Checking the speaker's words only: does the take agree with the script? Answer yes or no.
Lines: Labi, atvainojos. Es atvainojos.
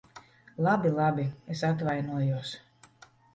no